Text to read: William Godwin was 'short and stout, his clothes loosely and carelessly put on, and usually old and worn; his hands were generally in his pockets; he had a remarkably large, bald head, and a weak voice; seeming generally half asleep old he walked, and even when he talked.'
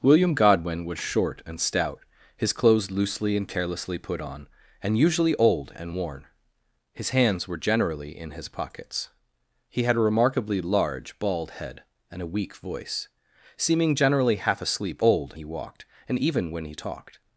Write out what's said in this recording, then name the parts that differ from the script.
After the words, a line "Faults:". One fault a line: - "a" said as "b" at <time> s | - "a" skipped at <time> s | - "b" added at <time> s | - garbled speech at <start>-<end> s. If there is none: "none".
William Godwin was 'short and stout, his clothes loosely and carelessly put on, and usually old and worn; his hands were generally in his pockets; he had a remarkably large, bald head, and a weak voice; seeming generally half asleep old he walked, and even when he talked.'
Faults:
none